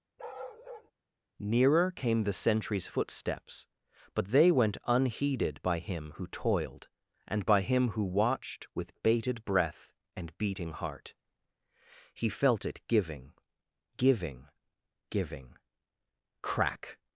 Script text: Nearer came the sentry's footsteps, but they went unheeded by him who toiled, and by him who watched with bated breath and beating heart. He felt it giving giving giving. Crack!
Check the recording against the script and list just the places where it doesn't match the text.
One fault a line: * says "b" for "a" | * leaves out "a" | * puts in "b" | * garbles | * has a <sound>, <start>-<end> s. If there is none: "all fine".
* has a bark, 0.2-0.9 s